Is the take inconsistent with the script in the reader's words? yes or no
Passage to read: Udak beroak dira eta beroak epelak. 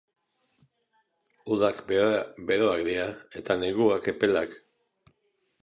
yes